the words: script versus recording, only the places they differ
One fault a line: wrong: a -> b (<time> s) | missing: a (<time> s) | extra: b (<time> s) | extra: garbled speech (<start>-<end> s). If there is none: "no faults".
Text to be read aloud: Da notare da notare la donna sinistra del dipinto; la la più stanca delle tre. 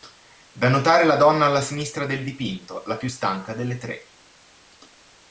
missing: da notare (1.1 s)
extra: alla (1.4 s)
missing: la (3.0 s)